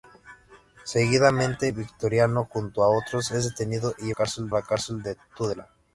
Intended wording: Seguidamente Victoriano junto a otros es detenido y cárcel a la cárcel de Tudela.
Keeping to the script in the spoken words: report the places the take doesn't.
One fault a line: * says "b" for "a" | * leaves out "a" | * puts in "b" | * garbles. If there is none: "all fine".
all fine